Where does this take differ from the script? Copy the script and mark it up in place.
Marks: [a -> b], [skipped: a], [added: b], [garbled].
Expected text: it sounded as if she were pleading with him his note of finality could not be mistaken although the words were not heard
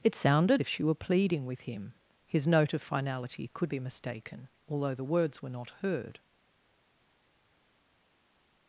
it sounded [skipped: as] if she were pleading with him his note of finality could [skipped: not] be mistaken although the words were not heard